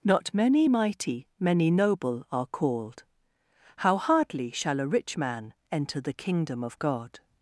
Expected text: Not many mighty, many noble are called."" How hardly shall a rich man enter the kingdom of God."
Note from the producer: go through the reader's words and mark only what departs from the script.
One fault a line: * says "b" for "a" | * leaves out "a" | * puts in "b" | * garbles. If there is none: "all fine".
all fine